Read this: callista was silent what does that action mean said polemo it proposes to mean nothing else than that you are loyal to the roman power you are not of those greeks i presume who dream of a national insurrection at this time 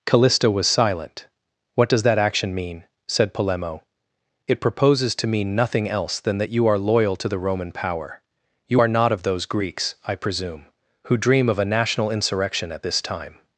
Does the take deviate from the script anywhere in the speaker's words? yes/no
no